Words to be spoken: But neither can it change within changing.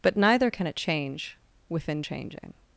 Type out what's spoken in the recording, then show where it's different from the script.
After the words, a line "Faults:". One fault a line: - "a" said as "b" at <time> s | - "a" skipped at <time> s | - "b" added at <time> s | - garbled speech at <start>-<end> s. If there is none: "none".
But neither can it change within changing.
Faults:
none